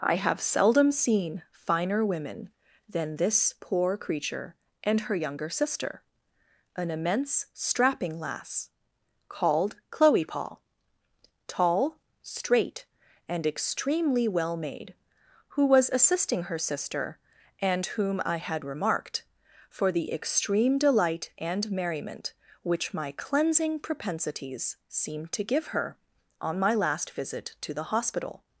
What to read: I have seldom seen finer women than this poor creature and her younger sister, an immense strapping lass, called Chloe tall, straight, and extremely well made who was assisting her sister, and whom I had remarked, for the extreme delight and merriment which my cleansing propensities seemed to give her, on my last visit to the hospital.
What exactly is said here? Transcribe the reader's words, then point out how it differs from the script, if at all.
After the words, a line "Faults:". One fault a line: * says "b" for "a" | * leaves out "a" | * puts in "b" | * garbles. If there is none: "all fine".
I have seldom seen finer women than this poor creature and her younger sister, an immense strapping lass, called Chloe paul tall, straight, and extremely well made who was assisting her sister, and whom I had remarked, for the extreme delight and merriment which my cleansing propensities seemed to give her, on my last visit to the hospital.
Faults:
* puts in "paul"